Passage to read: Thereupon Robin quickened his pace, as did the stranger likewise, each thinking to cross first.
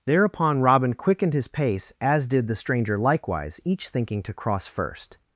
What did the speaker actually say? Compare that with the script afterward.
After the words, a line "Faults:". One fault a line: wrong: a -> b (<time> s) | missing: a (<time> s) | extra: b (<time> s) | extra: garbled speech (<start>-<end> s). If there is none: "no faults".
Thereupon Robin quickened his pace, as did the stranger likewise, each thinking to cross first.
Faults:
no faults